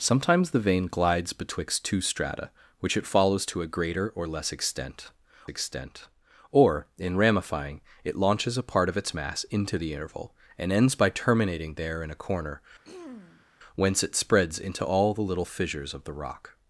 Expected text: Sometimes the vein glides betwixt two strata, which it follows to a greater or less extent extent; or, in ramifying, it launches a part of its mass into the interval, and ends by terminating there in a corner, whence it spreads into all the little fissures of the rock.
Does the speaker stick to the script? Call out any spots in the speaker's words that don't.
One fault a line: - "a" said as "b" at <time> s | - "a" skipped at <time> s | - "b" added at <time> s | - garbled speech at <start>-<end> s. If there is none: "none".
none